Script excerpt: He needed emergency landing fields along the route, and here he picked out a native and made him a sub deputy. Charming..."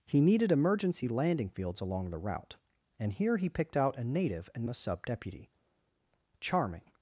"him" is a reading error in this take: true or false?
true